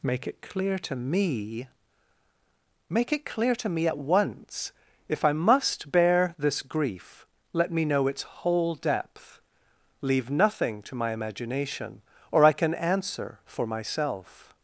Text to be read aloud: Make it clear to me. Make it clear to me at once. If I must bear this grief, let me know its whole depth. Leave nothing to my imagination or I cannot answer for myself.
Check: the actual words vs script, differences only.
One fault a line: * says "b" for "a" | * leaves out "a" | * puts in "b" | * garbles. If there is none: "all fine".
* says "can" for "cannot"